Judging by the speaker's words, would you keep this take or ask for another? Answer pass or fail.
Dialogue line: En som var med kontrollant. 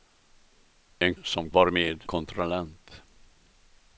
pass